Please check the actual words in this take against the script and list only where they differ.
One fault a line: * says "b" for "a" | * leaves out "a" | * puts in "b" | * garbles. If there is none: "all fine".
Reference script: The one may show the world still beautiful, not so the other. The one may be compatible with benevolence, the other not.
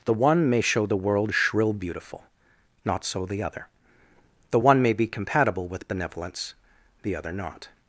* says "shrill" for "still"